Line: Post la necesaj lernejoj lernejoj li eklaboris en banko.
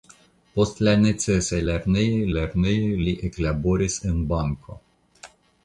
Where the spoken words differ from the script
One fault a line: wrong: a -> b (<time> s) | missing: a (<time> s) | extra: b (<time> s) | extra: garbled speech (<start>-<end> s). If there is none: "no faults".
no faults